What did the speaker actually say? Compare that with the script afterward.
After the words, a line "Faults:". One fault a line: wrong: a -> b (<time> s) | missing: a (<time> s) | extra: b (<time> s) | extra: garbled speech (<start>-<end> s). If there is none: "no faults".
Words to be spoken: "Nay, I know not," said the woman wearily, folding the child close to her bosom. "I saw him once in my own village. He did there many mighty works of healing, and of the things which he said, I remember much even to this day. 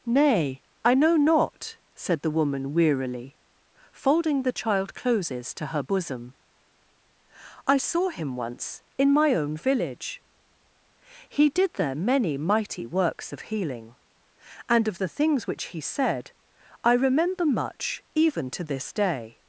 "Nay, I know not," said the woman wearily, folding the child closes to her bosom. "I saw him once in my own village. He did there many mighty works of healing, and of the things which he said, I remember much even to this day.
Faults:
wrong: close -> closes (4.9 s)